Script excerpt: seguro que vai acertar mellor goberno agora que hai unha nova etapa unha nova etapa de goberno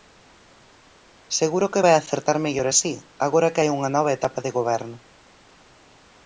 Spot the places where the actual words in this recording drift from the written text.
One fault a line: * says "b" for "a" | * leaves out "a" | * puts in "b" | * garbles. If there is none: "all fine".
* says "así" for "goberno"
* leaves out "unha nova etapa"